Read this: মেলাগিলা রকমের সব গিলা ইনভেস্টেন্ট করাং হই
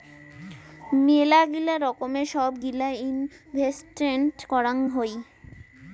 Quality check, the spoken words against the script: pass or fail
pass